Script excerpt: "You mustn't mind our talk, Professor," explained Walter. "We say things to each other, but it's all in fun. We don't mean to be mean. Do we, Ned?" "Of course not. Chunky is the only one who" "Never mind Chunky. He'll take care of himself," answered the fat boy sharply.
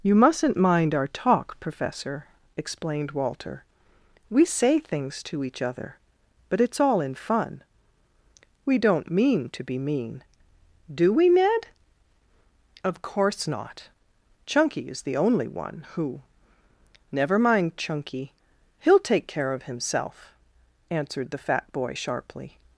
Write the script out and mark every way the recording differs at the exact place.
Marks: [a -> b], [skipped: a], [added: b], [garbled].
"You mustn't mind our talk, Professor," explained Walter. "We say things to each other, but it's all in fun. We don't mean to be mean. Do we, Ned?" "Of course not. Chunky is the only one who" "Never mind Chunky. He'll take care of himself," answered the fat boy sharply.